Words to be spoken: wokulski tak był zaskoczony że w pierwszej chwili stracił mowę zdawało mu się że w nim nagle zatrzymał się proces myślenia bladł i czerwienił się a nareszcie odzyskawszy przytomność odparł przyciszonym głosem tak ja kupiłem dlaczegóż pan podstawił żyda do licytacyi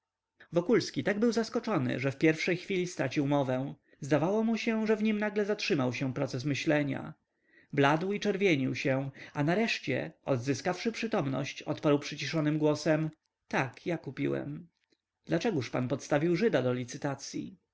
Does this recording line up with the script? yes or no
yes